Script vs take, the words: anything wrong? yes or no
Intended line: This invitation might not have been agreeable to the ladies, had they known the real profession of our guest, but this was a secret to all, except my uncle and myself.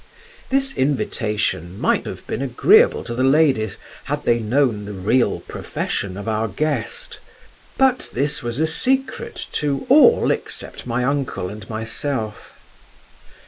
yes